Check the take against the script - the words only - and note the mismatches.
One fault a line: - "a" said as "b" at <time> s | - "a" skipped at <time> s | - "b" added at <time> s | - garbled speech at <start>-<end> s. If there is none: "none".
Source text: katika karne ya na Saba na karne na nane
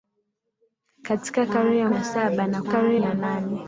none